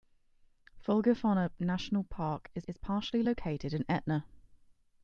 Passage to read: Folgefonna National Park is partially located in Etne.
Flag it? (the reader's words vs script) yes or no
yes